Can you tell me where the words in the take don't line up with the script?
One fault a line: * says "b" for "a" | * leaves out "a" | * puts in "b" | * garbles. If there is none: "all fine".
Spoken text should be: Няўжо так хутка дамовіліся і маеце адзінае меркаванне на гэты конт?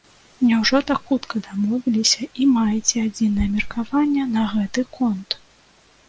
all fine